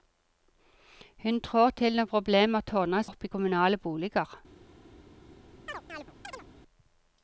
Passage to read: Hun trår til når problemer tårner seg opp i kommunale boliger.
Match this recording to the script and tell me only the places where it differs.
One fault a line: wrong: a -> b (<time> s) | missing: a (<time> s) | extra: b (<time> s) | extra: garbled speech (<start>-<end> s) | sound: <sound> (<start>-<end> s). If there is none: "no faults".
missing: seg (3.0 s)
sound: chirp (5.7-6.5 s)